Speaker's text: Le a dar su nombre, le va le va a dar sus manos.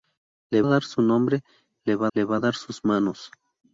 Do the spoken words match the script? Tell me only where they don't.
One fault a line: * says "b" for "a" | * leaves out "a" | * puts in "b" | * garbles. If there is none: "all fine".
all fine